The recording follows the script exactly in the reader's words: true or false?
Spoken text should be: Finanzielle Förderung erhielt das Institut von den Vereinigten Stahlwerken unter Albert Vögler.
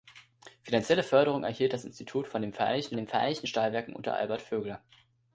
false